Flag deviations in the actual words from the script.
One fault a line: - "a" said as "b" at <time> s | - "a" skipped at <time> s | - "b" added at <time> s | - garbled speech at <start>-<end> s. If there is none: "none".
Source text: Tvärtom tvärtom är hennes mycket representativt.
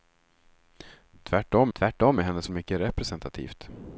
none